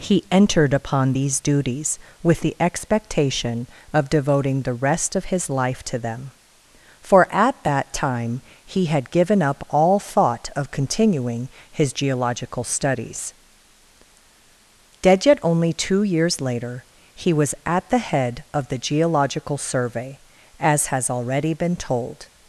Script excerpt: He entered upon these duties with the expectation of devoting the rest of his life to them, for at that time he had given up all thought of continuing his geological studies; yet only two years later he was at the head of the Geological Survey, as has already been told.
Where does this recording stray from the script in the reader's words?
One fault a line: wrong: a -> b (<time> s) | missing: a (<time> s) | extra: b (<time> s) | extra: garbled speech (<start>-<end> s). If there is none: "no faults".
extra: dead (15.0 s)